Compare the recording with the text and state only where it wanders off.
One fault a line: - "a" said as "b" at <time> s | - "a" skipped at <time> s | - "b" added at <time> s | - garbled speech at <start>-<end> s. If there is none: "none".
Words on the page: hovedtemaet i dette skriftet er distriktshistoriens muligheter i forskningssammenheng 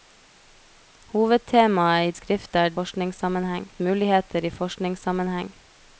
- "dette" skipped at 2.1 s
- "distriktshistoriens" said as "forskningssammenheng" at 2.8 s